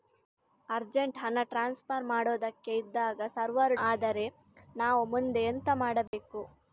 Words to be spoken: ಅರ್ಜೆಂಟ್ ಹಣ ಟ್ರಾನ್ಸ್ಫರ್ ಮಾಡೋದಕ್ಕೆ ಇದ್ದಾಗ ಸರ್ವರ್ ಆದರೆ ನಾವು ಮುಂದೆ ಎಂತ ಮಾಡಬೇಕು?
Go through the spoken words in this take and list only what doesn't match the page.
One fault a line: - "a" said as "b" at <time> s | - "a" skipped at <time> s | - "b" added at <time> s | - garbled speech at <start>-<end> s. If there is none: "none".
none